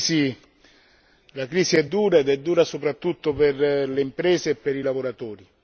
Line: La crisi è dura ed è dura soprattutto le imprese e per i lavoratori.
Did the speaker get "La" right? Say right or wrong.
right